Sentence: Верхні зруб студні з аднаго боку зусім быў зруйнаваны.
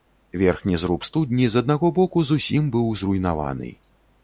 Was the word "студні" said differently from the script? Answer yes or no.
no